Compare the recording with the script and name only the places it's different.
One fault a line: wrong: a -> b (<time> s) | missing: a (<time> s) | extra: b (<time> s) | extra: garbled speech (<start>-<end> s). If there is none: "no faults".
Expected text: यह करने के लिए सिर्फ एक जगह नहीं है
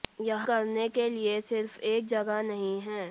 no faults